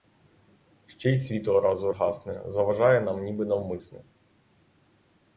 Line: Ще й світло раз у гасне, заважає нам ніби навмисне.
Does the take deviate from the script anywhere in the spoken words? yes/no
no